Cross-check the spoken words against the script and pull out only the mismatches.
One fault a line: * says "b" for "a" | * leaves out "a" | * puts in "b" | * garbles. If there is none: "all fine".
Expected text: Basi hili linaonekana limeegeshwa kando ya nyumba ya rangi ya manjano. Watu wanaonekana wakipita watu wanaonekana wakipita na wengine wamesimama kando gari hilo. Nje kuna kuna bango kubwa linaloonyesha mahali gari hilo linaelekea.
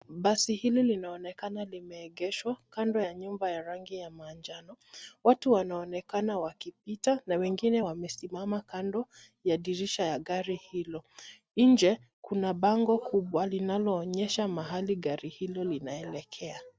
* leaves out "watu wanaonekana wakipita"
* puts in "ya dirisha ya"
* leaves out "kuna"